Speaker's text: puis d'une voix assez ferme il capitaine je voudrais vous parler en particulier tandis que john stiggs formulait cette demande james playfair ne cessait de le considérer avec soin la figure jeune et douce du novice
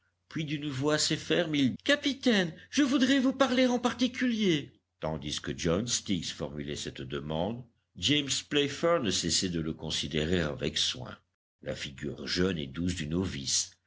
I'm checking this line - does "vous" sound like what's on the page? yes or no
yes